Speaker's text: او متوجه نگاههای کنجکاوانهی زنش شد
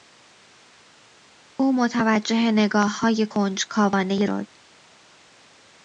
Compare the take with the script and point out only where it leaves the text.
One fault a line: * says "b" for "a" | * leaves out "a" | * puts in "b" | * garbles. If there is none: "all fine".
* leaves out "زنش"